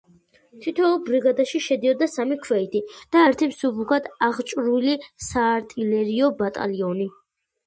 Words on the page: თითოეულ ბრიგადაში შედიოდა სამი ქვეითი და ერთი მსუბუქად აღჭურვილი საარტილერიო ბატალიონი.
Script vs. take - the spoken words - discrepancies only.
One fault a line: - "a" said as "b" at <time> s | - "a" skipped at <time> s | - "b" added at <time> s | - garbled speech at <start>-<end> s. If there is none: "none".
none